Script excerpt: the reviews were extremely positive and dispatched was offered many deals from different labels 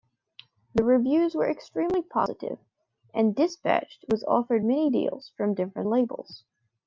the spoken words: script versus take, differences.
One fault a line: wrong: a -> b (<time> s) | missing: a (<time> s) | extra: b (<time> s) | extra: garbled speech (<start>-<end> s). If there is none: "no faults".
no faults